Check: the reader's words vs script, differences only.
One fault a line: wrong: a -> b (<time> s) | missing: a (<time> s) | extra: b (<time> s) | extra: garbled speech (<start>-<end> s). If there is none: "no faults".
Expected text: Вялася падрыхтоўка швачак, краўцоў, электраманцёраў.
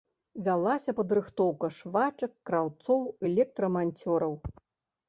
no faults